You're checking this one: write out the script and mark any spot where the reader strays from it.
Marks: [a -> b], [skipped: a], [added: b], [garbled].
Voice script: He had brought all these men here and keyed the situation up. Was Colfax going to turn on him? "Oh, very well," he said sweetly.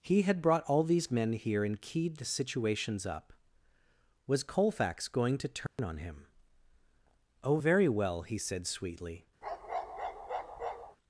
He had brought all these men here and keyed the [situation -> situations] up. Was Colfax going to turn on him? "Oh, very well," he said sweetly.